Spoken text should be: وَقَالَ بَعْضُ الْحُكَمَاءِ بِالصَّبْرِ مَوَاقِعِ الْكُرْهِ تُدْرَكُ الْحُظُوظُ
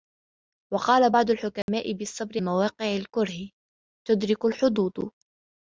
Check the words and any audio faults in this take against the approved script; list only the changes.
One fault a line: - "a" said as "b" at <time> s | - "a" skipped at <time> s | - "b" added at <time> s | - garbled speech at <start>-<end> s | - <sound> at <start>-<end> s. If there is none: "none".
- dropout at 1.6-1.7 s